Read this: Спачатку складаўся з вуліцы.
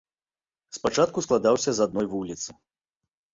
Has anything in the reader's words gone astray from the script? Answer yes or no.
yes